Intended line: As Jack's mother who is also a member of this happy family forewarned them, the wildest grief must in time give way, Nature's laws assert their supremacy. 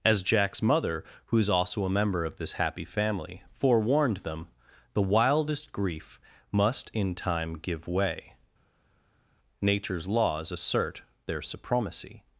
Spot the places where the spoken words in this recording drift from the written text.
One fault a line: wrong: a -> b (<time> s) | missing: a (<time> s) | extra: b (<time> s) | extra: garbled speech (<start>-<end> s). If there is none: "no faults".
no faults